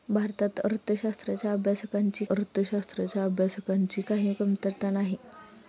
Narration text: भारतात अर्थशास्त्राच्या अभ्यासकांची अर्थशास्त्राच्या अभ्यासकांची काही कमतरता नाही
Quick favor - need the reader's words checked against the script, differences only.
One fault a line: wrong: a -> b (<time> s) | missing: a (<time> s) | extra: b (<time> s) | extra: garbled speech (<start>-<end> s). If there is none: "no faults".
no faults